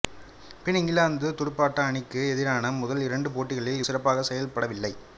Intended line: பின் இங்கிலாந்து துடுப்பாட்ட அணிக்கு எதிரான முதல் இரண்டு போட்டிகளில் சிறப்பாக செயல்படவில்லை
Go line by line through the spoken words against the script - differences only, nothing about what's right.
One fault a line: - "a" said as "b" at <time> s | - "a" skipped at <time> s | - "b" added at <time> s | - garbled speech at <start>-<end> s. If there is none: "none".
none